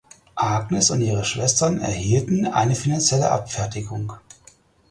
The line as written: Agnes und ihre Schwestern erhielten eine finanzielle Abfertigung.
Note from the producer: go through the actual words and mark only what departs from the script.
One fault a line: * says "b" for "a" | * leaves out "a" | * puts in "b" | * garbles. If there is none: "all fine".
all fine